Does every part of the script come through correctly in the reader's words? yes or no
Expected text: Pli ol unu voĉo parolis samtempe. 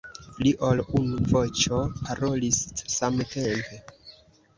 yes